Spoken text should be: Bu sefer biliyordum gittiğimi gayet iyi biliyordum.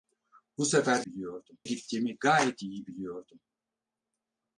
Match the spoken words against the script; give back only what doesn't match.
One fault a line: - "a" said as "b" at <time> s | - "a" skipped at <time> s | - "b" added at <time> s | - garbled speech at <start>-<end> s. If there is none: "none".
none